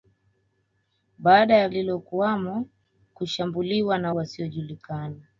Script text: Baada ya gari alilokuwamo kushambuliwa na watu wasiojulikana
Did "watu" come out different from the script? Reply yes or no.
yes